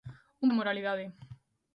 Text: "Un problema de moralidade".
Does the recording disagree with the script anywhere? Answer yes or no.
yes